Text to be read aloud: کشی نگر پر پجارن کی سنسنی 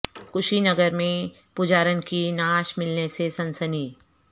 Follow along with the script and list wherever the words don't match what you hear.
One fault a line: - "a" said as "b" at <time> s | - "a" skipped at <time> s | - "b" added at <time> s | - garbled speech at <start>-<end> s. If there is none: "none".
- "پر" said as "میں" at 0.9 s
- "نعش ملنے سے" added at 2.3 s